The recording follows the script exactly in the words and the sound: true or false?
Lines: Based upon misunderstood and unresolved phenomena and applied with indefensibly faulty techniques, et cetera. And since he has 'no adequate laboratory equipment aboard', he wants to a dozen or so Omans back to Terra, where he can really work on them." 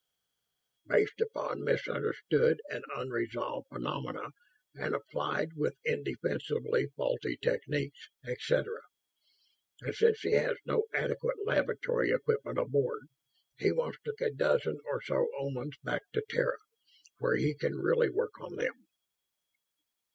true